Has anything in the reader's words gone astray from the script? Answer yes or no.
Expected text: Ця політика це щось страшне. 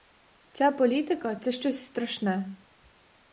no